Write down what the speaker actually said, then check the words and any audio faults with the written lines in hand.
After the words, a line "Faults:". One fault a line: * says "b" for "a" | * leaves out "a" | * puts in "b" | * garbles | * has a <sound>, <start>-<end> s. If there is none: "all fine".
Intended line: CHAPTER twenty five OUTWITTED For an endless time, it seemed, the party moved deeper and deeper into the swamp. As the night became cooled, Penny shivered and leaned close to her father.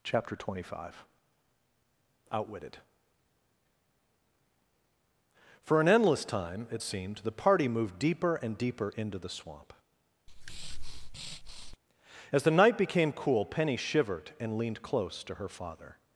CHAPTER twenty five OUTWITTED For an endless time, it seemed, the party moved deeper and deeper into the swamp. As the night became cool, Penny shivered and leaned close to her father.
Faults:
* has a breath, 10.3-11.8 s
* says "cool" for "cooled"